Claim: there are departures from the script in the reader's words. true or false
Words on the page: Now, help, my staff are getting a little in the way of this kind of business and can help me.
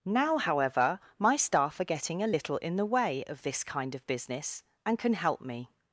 true